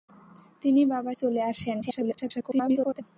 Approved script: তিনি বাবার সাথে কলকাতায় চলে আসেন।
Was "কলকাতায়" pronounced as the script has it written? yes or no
no